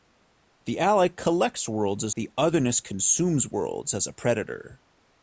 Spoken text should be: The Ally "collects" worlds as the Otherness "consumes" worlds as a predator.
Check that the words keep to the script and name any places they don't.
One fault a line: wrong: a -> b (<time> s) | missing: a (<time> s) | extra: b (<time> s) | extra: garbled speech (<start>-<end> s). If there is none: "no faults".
no faults